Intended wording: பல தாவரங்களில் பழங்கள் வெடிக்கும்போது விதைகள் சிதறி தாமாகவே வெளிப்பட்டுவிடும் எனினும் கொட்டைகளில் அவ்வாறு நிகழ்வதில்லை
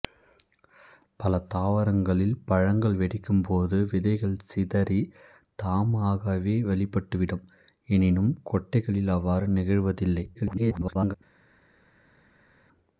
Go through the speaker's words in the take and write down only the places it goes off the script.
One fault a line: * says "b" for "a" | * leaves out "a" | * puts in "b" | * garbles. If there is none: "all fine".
* garbles